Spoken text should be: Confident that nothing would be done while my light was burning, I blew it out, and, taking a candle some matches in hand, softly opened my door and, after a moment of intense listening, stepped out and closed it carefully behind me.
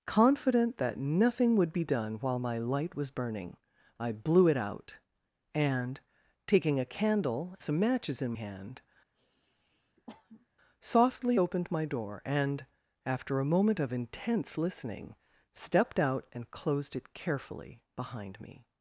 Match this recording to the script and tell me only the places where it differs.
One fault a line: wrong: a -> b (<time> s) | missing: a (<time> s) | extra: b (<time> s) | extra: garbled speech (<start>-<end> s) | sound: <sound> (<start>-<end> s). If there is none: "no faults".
sound: sniff (9.1-10.5 s)